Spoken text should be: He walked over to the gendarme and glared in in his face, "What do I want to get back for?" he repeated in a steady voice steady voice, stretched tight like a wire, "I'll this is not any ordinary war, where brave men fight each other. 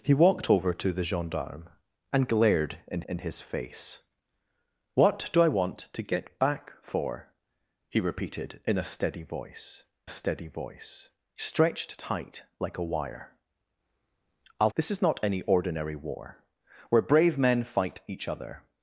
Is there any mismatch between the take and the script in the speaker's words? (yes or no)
no